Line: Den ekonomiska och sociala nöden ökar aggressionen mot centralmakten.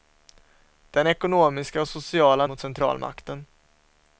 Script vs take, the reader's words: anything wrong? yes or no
yes